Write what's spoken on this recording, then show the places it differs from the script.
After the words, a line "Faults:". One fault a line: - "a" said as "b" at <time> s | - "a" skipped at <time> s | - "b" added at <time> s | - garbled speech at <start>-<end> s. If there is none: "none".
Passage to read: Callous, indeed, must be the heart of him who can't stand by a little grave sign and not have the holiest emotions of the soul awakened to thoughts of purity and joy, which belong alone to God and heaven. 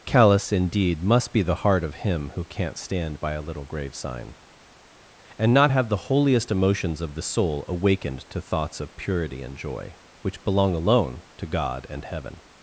Callous, indeed, must be the heart of him who can't stand by a little grave sign and not have the holiest emotions of the soul awakened to thoughts of purity and joy, which belong alone to God and heaven.
Faults:
none